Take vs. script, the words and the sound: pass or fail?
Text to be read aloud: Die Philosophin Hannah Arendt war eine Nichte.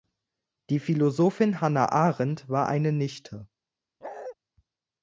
fail